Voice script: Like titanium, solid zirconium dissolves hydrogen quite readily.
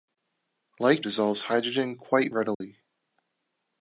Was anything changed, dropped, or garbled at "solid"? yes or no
yes